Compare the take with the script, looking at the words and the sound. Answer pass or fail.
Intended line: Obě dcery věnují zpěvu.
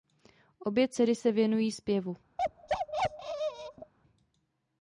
fail